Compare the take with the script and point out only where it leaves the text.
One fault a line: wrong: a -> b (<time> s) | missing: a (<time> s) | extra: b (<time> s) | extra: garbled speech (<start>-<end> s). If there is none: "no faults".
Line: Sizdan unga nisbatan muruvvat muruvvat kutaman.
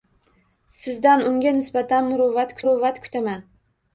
no faults